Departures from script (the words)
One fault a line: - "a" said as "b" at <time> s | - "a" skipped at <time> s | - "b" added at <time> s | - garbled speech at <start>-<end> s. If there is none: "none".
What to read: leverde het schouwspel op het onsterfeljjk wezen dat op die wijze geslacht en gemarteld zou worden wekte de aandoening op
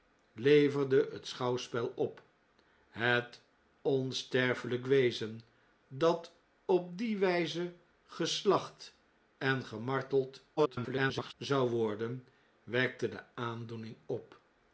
- garbled speech at 10.6-11.3 s